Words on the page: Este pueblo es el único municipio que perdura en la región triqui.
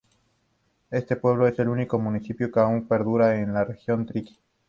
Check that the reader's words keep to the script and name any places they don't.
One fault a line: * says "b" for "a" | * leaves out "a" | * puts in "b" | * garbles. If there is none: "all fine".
* puts in "aún"